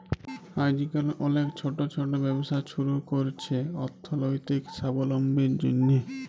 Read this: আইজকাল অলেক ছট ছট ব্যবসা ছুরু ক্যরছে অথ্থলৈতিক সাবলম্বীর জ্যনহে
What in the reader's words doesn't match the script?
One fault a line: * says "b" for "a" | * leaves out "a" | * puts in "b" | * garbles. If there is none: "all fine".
all fine